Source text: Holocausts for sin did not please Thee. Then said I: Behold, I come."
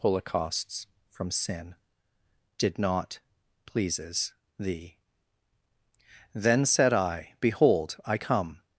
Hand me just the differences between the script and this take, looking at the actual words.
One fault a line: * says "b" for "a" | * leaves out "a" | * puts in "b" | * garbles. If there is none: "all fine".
* says "from" for "for"
* says "pleases" for "please"